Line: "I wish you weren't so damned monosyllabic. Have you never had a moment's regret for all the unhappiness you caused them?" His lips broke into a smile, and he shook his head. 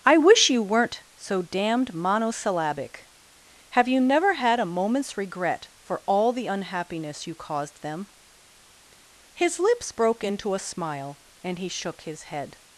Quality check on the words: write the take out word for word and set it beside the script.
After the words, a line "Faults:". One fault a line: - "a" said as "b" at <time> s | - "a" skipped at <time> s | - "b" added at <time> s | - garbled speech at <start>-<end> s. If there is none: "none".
"I wish you weren't so damned monosyllabic. Have you never had a moment's regret for all the unhappiness you caused them?" His lips broke into a smile, and he shook his head.
Faults:
none